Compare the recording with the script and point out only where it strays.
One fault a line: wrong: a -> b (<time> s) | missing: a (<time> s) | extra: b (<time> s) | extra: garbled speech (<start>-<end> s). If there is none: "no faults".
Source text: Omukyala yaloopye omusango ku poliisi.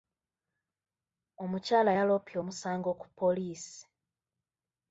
no faults